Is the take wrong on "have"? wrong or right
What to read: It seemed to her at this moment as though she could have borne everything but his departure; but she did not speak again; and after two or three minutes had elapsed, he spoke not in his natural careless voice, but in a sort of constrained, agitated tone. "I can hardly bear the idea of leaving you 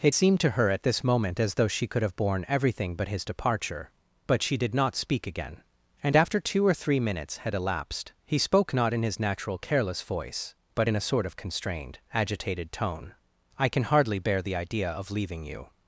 right